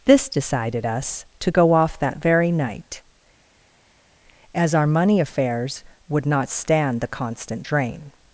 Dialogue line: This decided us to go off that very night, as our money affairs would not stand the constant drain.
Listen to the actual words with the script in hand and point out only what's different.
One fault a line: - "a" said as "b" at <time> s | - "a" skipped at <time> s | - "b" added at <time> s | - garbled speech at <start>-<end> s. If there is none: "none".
none